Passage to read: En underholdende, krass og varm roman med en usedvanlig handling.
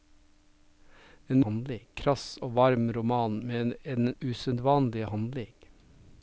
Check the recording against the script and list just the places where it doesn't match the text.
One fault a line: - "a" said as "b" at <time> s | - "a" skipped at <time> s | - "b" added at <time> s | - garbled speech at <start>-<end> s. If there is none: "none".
- "underholdende" said as "handling" at 1.5 s